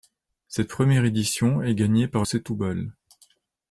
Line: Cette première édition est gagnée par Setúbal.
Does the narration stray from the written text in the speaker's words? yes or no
no